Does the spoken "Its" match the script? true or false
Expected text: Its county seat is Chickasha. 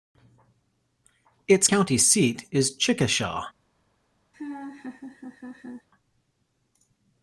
true